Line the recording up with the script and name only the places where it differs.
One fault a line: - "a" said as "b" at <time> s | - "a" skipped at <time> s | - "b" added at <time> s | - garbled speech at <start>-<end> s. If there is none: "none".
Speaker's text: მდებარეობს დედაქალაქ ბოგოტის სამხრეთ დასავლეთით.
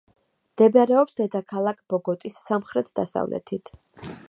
none